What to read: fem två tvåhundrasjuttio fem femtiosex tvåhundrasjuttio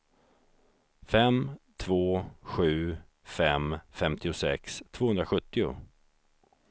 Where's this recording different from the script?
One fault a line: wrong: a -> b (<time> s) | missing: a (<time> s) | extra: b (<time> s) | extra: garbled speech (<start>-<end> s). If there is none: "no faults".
wrong: tvåhundrasjuttio -> sju (2.4 s)